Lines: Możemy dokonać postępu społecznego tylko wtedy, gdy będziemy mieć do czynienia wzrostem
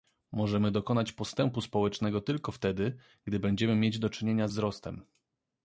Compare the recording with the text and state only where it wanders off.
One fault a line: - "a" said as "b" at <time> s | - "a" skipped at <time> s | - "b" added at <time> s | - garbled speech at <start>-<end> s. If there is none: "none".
none